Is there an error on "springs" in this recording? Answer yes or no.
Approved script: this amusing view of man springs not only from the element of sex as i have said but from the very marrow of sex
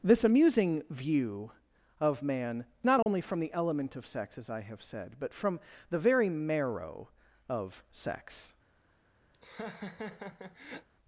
yes